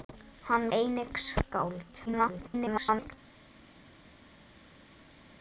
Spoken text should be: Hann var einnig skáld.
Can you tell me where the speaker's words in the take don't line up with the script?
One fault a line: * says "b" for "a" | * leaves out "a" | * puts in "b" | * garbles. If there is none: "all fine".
* leaves out "var"
* garbles